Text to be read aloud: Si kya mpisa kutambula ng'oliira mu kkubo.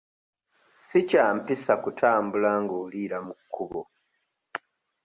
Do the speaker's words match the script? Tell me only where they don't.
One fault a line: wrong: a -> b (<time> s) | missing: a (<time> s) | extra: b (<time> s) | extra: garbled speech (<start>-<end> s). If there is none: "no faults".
no faults